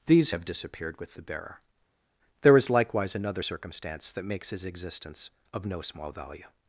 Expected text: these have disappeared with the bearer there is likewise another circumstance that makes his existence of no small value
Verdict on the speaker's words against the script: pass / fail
pass